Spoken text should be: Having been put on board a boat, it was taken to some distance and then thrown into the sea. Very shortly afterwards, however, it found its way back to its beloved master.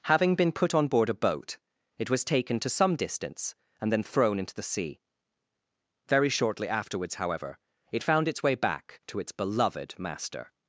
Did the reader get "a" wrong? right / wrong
right